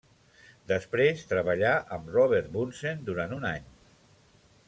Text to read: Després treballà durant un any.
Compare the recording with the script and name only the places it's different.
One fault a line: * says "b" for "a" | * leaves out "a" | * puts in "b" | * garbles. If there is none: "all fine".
* puts in "amb Robert Bunsen"